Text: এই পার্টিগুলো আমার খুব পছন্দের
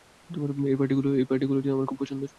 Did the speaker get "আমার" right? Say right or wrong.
right